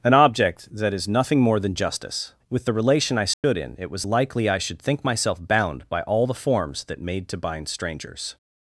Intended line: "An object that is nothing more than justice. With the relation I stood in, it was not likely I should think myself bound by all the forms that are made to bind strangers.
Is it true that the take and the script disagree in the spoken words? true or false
true